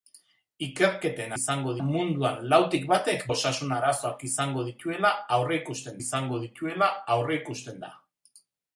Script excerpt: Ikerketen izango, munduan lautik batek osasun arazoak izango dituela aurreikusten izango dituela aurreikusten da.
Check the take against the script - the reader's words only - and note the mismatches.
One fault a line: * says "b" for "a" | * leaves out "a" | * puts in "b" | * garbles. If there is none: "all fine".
all fine